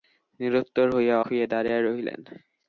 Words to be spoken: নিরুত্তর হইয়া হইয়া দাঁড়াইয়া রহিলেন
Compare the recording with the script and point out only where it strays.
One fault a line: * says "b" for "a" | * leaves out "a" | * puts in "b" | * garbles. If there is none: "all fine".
all fine